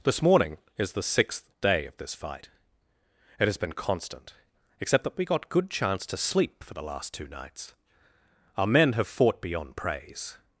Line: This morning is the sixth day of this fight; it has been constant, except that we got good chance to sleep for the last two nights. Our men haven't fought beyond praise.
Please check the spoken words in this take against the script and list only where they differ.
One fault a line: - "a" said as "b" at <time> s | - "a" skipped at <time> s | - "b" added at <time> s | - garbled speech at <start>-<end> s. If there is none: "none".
- "haven't" said as "have" at 8.9 s